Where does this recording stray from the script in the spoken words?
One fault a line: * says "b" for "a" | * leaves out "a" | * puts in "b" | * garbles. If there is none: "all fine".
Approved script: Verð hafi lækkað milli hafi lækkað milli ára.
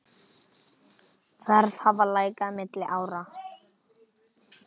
* leaves out "hafi lækkað milli"